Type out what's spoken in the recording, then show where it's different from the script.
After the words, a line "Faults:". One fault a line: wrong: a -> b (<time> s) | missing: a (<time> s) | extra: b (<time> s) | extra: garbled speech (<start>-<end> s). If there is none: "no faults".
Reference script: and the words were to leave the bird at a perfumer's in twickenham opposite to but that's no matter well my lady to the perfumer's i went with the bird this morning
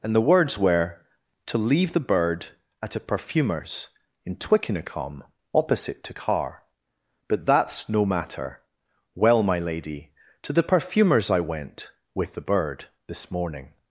and the words were to leave the bird at a perfumer's in twickenham opposite to carr but that's no matter well my lady to the perfumer's i went with the bird this morning
Faults:
extra: carr (6.1 s)